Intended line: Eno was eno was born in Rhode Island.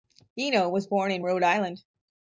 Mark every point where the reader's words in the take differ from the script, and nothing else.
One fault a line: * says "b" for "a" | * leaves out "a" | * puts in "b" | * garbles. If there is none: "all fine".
* leaves out "eno was"